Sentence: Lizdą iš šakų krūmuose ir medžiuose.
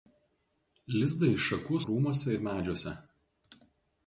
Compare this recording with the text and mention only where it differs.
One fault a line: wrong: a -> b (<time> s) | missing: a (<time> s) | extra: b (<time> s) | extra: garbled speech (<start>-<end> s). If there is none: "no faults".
no faults